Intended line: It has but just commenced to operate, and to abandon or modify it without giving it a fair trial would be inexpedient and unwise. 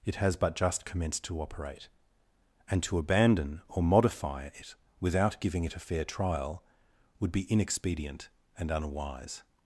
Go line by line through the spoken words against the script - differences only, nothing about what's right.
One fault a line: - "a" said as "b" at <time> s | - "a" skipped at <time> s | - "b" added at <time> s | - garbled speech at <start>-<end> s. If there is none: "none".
none